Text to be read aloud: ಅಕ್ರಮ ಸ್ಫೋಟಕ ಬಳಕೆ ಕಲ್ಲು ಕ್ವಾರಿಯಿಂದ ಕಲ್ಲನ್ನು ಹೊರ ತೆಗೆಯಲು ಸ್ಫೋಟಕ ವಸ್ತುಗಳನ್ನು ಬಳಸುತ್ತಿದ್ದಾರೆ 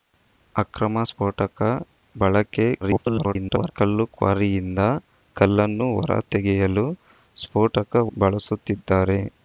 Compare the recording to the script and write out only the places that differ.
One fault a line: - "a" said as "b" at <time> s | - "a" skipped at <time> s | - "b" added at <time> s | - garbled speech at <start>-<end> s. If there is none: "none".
- garbled speech at 2.8-3.7 s
- "ವಸ್ತುಗಳನ್ನು" skipped at 7.9 s